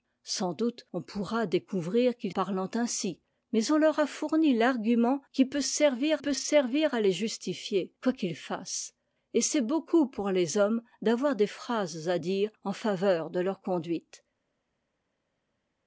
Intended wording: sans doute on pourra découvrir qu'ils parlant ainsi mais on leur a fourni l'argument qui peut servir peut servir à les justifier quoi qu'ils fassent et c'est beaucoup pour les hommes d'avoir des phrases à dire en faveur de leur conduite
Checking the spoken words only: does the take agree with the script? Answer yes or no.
yes